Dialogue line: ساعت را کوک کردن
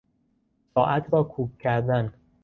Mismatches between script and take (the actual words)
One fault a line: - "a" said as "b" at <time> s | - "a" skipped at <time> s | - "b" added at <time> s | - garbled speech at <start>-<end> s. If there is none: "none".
none